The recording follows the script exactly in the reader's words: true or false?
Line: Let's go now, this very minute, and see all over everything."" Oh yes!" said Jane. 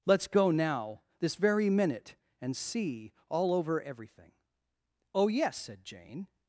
true